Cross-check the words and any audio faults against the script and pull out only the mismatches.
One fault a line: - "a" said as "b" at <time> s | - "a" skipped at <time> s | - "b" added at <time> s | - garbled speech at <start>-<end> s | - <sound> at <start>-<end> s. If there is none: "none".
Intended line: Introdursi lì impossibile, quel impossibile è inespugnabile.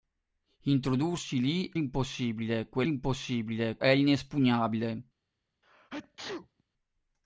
- sneeze at 5.6-6.6 s